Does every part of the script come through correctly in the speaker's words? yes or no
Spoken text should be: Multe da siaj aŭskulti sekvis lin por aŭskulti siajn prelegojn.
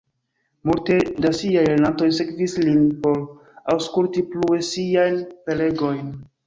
no